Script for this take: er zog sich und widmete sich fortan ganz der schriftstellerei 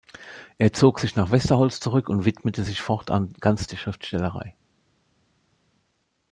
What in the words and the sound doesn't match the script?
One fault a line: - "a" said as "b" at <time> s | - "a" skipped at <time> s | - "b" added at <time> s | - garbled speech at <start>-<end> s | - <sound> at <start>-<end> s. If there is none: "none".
- "nach westerholz zurück" added at 1.1 s